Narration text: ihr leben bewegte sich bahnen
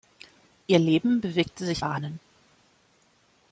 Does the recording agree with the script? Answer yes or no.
yes